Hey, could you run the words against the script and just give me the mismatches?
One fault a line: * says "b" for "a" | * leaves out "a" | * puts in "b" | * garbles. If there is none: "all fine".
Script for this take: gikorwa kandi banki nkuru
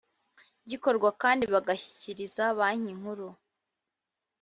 * puts in "bagashyikiriza"